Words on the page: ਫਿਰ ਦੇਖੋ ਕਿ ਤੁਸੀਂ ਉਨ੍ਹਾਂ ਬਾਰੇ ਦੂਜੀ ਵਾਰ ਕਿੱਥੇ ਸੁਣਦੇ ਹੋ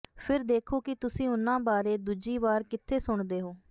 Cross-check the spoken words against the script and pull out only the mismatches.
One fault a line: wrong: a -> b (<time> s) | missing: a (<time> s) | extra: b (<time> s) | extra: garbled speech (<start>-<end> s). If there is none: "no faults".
no faults